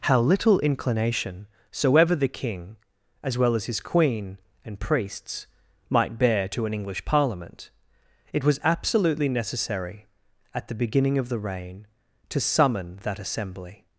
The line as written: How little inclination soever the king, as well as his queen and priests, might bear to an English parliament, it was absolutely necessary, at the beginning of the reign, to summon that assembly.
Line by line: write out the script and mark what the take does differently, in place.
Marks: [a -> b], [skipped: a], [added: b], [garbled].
How little inclination soever the king, as well as his queen and priests, might bear to an English parliament, it was absolutely necessary, at the beginning of the reign, to summon that assembly.